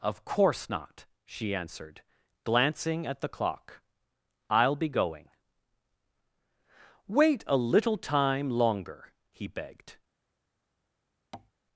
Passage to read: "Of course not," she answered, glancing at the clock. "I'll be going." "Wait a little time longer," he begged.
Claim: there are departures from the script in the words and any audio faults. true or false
true